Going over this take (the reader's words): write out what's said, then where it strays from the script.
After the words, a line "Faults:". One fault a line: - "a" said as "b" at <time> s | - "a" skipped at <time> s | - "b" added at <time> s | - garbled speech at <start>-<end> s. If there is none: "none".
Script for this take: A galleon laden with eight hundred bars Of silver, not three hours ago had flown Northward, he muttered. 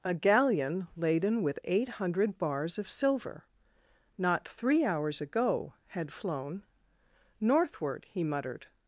A galleon laden with eight hundred bars Of silver, not three hours ago had flown Northward, he muttered.
Faults:
none